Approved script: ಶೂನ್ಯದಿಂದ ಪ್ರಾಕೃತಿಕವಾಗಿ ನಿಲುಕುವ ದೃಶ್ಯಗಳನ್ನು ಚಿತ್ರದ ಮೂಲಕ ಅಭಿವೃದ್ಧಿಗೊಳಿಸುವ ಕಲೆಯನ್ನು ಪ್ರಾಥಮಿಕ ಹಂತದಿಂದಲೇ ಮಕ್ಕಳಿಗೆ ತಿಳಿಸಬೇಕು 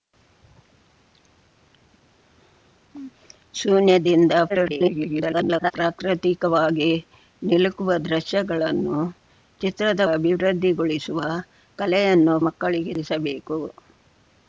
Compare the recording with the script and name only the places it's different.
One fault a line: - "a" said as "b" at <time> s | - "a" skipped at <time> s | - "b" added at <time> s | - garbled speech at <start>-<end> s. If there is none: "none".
- garbled speech at 4.5-5.7 s
- "ಮೂಲಕ" skipped at 10.0 s
- "ಪ್ರಾಥಮಿಕ ಹಂತದಿಂದಲೇ" skipped at 12.4 s